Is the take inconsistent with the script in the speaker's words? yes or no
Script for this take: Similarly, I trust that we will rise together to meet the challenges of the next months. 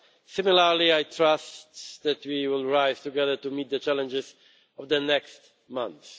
no